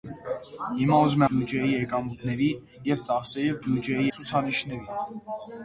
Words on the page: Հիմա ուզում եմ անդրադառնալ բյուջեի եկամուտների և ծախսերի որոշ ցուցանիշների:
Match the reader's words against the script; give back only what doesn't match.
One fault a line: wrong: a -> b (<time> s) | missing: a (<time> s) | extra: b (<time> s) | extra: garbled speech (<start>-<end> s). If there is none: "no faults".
missing: եմ անդրադառնալ (1.2 s)
wrong: որոշ -> բյուջեի (3.6 s)